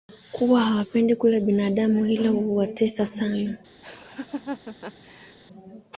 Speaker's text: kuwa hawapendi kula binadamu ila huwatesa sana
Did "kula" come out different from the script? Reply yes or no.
no